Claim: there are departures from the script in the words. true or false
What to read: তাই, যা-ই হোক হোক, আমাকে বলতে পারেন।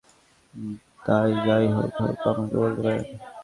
false